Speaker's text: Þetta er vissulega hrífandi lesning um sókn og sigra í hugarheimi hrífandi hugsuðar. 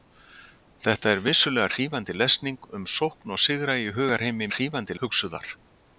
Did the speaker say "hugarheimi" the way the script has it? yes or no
yes